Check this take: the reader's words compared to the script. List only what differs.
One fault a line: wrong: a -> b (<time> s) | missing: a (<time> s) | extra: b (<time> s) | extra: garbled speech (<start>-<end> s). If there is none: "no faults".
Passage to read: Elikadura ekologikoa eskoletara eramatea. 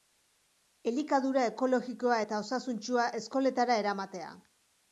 extra: eta osasuntsua (2.2 s)